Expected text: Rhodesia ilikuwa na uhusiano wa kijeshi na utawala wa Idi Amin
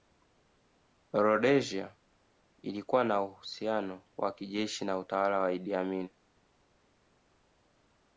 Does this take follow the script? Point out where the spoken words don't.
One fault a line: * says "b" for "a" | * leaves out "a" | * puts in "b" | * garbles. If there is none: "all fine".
all fine